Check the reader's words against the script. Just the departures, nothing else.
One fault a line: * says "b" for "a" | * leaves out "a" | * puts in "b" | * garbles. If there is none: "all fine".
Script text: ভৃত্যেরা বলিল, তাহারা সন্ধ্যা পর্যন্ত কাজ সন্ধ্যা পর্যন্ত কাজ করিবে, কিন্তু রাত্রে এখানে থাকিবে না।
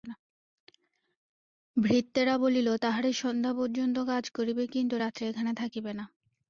* leaves out "সন্ধ্যা পর্যন্ত কাজ"